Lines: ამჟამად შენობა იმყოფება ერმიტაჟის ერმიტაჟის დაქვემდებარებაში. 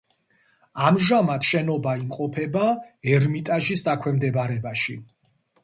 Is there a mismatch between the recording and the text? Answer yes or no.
yes